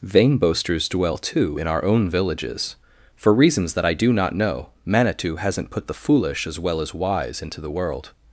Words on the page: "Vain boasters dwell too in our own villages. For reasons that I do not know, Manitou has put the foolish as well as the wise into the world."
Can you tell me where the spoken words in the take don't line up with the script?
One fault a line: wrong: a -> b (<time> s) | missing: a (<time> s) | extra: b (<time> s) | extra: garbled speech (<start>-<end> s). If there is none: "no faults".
wrong: has -> hasn't (5.4 s)
missing: the (6.9 s)